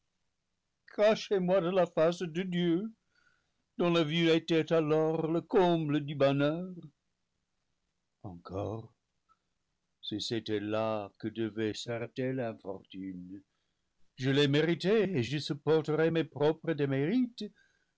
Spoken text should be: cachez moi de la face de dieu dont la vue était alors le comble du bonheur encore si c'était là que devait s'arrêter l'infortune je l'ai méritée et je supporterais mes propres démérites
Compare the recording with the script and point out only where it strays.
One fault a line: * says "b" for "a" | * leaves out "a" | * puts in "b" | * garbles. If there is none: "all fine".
all fine